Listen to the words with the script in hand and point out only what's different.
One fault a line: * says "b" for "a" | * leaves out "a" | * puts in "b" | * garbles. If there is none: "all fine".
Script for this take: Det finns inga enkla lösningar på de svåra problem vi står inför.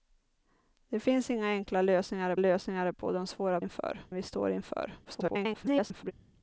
* puts in "lösningar"
* says "inför" for "problem"
* garbles